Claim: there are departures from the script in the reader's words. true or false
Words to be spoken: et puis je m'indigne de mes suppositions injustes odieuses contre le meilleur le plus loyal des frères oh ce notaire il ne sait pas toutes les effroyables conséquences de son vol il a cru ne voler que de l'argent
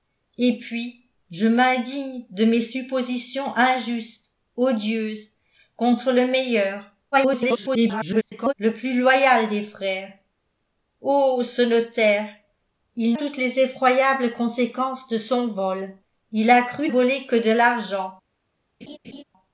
true